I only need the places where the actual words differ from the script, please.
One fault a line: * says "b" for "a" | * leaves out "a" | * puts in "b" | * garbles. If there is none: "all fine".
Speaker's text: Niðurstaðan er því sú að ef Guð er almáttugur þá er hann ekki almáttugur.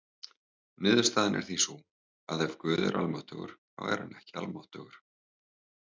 all fine